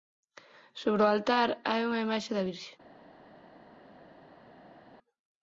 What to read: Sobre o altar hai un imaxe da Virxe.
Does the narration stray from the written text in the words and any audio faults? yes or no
yes